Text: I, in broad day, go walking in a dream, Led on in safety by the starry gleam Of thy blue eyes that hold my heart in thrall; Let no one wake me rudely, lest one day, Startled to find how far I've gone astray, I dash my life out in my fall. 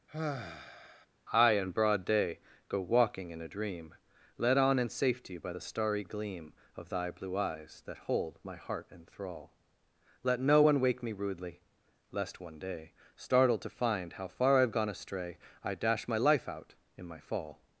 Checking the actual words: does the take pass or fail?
pass